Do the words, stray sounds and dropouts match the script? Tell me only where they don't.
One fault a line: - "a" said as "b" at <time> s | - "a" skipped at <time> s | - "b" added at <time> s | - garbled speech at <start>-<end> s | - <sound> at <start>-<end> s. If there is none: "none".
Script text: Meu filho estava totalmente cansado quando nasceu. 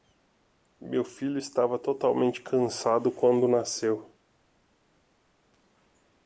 none